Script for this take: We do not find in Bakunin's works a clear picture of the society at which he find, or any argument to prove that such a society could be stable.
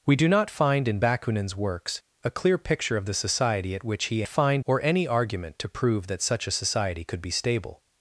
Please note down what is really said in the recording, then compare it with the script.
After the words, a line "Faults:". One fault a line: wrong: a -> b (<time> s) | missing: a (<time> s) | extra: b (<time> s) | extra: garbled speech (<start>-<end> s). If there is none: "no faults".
We do not find in Bakunin's works a clear picture of the society at which he find, or any argument to prove that such a society could be stable.
Faults:
no faults